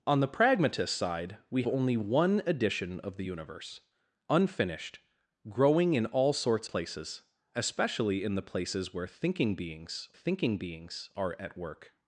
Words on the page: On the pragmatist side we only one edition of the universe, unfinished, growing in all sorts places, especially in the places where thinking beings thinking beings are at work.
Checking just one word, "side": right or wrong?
right